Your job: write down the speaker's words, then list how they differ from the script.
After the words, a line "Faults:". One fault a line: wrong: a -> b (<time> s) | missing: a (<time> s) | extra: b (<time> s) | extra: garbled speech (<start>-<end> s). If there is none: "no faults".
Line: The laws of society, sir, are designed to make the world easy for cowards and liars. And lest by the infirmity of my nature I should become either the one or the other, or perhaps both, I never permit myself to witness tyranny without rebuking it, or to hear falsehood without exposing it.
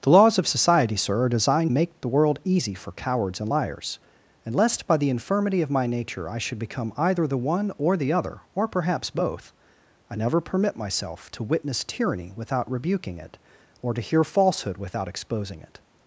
The laws of society, sir, are designed make the world easy for cowards and liars. And lest by the infirmity of my nature I should become either the one or the other, or perhaps both, I never permit myself to witness tyranny without rebuking it, or to hear falsehood without exposing it.
Faults:
missing: to (1.7 s)